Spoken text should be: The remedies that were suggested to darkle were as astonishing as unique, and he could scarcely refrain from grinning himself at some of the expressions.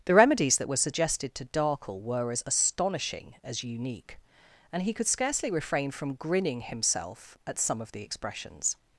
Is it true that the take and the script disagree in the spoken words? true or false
false